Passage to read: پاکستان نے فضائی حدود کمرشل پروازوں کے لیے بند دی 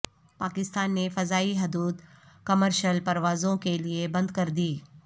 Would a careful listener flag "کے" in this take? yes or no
no